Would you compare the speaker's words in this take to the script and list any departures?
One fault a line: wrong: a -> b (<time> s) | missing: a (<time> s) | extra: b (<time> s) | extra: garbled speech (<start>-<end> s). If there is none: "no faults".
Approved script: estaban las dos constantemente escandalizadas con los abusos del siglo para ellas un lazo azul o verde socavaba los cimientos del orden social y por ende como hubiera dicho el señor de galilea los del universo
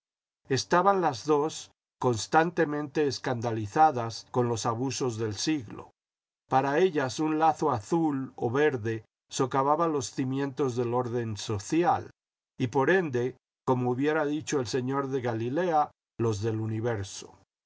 no faults